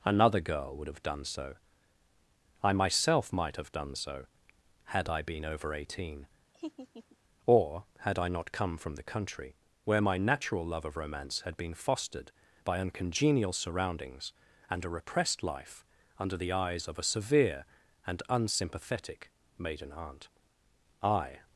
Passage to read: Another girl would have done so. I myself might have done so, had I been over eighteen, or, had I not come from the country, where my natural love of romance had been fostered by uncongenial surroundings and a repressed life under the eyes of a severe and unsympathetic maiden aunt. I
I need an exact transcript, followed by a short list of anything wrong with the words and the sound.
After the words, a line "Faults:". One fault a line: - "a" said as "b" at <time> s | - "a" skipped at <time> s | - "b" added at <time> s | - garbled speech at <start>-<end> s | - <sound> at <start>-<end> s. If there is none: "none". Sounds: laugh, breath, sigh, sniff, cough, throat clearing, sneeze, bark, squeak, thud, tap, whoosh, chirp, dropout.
Another girl would have done so. I myself might have done so, had I been over eighteen, or, had I not come from the country, where my natural love of romance had been fostered by uncongenial surroundings and a repressed life under the eyes of a severe and unsympathetic maiden aunt. I
Faults:
- laugh at 6.5-7.2 s